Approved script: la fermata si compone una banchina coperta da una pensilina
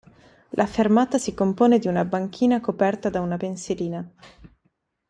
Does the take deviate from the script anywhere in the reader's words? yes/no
yes